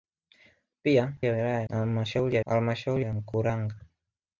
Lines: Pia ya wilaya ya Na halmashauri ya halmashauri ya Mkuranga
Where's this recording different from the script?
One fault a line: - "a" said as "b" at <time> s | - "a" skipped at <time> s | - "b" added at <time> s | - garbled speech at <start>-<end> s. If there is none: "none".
none